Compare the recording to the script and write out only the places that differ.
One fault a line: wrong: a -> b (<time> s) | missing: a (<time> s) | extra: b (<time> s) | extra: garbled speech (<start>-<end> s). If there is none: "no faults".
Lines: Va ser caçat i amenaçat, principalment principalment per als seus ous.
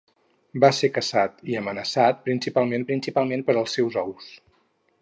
no faults